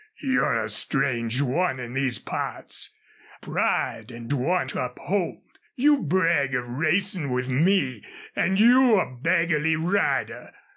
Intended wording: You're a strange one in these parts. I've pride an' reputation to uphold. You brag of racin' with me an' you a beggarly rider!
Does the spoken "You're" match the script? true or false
true